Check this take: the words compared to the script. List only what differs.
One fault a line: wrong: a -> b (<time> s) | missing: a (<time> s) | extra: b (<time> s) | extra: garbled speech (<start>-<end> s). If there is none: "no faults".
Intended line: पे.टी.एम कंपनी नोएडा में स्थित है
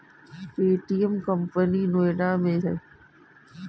missing: स्थित (2.6 s)